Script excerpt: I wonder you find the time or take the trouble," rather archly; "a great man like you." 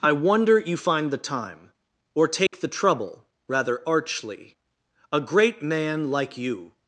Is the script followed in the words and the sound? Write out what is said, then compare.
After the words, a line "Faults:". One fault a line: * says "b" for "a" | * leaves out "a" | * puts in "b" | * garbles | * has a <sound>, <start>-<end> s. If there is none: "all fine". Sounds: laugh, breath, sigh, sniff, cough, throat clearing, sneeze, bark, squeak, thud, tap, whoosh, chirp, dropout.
I wonder you find the time or take the trouble," rather archly; "a great man like you."
Faults:
* has a dropout, 2.5-2.5 s